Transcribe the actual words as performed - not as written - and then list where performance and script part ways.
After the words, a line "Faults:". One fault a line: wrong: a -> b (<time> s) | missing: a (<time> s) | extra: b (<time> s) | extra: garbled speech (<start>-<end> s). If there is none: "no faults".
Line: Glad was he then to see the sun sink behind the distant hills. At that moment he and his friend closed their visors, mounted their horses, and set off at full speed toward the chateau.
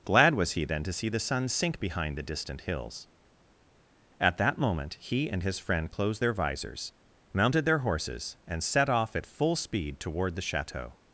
Glad was he then to see the sun sink behind the distant hills. At that moment he and his friend closed their visors, mounted their horses, and set off at full speed toward the chateau.
Faults:
no faults